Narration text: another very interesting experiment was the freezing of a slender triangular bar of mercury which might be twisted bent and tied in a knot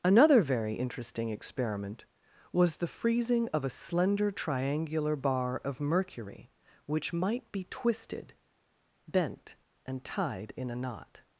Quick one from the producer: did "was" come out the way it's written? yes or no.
yes